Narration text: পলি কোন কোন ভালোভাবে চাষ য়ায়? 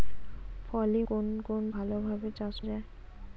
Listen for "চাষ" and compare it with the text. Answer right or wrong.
right